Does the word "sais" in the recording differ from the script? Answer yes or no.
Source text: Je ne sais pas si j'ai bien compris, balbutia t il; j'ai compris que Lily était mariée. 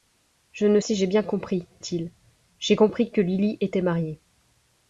yes